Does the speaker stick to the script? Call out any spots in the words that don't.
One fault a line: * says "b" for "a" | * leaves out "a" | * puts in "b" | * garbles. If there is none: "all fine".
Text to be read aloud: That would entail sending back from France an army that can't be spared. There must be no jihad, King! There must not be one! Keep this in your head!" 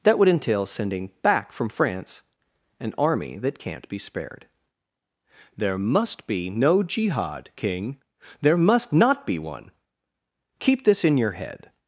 all fine